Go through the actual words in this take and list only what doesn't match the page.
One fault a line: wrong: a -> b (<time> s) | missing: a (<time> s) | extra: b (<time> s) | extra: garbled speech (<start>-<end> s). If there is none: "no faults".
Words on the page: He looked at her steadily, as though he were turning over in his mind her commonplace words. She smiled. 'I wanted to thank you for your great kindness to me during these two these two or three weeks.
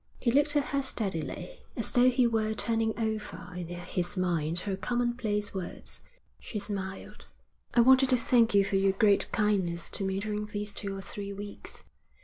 missing: these two (11.0 s)